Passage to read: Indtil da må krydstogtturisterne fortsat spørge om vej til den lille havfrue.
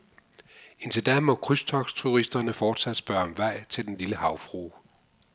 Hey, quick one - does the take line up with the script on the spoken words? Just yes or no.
yes